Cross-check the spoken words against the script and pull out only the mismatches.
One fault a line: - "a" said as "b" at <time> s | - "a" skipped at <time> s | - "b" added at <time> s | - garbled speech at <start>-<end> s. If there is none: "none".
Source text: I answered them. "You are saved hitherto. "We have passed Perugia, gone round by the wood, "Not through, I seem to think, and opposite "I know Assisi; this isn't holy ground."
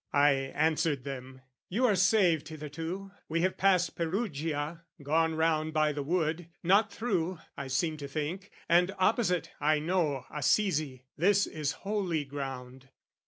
- "isn't" said as "is" at 11.4 s